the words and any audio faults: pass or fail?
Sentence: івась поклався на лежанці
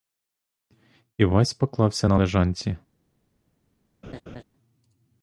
fail